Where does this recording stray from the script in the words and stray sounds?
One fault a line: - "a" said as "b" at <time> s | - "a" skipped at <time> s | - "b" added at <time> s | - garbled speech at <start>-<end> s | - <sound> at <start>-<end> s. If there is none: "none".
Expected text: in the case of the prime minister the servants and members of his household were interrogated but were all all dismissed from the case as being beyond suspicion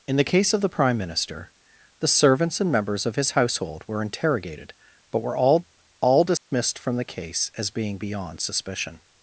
- dropout at 6.4-6.5 s